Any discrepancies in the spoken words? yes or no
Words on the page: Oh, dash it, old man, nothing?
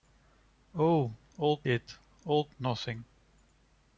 yes